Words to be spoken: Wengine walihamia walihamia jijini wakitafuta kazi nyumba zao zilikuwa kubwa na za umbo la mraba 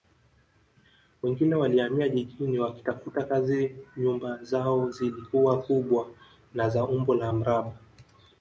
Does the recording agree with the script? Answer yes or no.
no